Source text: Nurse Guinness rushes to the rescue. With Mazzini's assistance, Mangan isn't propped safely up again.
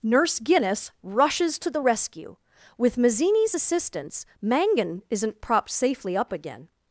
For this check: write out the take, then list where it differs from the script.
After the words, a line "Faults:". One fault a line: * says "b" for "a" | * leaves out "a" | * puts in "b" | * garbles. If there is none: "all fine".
Nurse Guinness rushes to the rescue. With Mazzini's assistance, Mangan isn't propped safely up again.
Faults:
all fine